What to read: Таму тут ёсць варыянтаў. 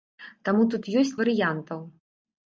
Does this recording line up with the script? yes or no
yes